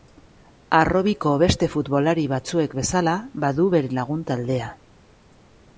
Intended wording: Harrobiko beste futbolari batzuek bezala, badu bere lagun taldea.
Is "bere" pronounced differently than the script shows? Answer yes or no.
no